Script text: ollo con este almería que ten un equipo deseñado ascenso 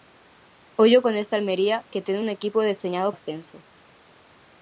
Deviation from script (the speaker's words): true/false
false